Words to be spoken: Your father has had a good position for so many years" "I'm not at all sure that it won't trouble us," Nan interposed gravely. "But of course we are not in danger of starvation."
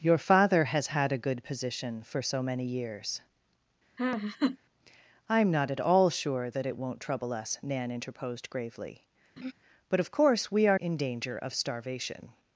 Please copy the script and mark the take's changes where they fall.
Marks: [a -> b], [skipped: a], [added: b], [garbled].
Your father has had a good position for so many years" "I'm not at all sure that it won't trouble us," Nan interposed gravely. "But of course we are [skipped: not] in danger of starvation."